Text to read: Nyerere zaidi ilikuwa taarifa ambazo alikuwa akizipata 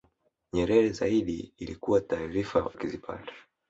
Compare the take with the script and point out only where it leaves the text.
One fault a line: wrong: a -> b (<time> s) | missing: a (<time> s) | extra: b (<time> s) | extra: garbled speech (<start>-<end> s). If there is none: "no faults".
missing: ambazo alikuwa (2.7 s)